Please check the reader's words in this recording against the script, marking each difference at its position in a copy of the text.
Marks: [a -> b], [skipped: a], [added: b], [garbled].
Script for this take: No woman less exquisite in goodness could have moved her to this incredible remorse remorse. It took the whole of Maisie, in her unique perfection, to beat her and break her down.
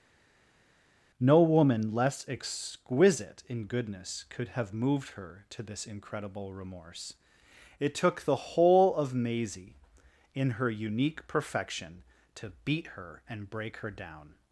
No woman less exquisite in goodness could have moved her to this incredible remorse [skipped: remorse.] It took the whole of Maisie, in her unique perfection, to beat her and break her down.